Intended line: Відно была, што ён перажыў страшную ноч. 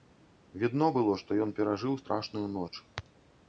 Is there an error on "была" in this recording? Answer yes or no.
yes